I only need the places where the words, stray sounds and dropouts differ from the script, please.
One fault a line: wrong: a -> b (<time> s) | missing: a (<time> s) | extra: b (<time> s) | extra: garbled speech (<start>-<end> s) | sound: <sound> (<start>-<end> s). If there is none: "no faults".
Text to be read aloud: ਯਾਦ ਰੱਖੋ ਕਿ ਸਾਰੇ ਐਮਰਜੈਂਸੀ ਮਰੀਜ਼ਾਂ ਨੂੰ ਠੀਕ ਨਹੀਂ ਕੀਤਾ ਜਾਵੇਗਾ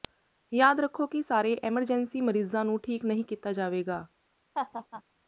sound: laugh (4.5-5.0 s)